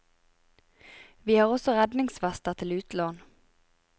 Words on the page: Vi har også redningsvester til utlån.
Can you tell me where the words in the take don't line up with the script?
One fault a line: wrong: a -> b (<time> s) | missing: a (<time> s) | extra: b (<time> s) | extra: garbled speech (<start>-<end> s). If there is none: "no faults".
no faults